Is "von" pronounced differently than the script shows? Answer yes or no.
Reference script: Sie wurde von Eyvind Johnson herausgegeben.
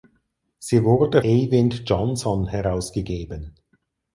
yes